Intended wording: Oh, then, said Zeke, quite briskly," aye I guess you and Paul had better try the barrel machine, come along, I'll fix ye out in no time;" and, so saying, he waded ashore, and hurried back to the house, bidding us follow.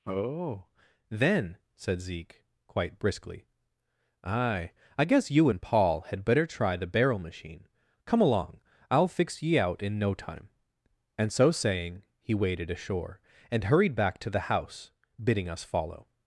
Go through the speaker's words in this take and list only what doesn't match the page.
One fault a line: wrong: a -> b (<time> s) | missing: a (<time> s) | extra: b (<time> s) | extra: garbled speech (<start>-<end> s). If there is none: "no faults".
no faults